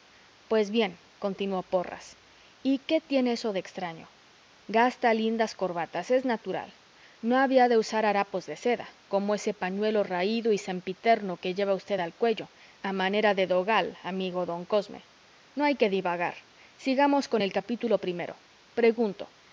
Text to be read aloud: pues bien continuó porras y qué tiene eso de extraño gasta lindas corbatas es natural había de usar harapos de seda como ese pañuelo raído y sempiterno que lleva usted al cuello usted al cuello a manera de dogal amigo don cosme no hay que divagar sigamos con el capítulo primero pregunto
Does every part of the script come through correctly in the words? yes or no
no